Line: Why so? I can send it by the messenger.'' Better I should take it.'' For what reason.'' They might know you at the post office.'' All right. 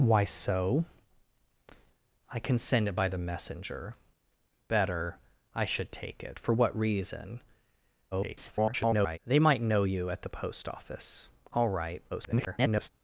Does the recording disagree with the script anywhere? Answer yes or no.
yes